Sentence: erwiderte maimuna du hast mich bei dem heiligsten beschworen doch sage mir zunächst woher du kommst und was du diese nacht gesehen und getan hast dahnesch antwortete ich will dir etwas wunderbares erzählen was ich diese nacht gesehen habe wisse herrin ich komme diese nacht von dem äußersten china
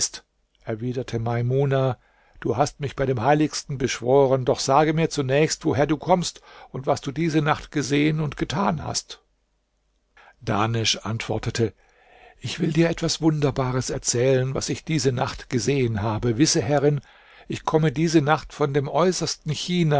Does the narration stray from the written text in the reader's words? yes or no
no